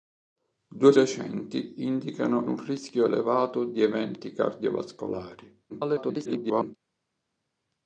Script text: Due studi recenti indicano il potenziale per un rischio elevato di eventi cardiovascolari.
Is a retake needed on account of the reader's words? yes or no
yes